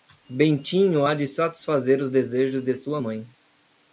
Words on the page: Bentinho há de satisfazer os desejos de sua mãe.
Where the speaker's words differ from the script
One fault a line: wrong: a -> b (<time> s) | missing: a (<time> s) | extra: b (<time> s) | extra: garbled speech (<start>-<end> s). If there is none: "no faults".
no faults